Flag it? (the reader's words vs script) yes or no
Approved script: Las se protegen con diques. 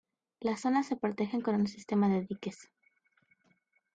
yes